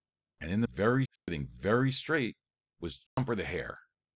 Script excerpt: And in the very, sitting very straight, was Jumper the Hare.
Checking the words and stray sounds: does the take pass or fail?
fail